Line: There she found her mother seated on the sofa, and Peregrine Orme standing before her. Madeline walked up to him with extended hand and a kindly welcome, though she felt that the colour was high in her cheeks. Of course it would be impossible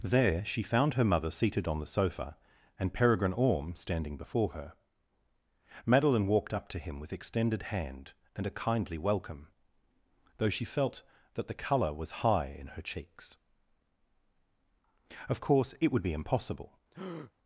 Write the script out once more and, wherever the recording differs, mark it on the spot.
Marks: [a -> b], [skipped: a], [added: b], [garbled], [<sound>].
There she found her mother seated on the sofa, and Peregrine Orme standing before her. Madeline walked up to him with extended hand and a kindly welcome, though she felt that the colour was high in her cheeks. Of course it would be impossible [breath]